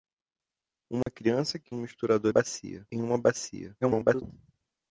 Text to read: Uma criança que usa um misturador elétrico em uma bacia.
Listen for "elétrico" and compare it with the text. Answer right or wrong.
wrong